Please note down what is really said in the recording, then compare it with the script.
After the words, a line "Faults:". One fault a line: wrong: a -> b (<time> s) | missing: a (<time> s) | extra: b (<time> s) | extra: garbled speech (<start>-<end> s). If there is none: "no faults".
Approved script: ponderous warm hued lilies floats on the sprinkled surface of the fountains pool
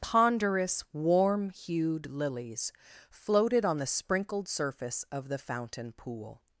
ponderous warm hued lilies floated on the sprinkled surface of the fountain pool
Faults:
wrong: floats -> floated (3.1 s)
wrong: fountains -> fountain (5.4 s)